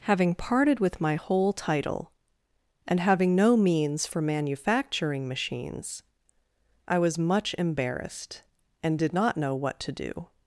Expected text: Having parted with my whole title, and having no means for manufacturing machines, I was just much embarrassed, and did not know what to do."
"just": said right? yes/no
no